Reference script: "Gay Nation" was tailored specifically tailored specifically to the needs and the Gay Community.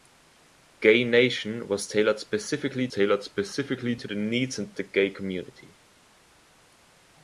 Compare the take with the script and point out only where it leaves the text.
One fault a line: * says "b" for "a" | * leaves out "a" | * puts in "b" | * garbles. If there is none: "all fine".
all fine